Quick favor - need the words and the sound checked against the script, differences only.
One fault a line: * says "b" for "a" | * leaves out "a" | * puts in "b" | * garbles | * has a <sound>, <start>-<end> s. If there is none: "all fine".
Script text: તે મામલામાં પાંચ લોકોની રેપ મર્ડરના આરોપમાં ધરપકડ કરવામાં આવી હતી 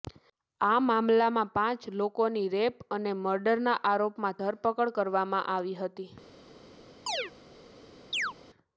* says "આ" for "તે"
* puts in "અને"
* has a chirp, 7.1-7.3 s
* has a chirp, 8.1-8.3 s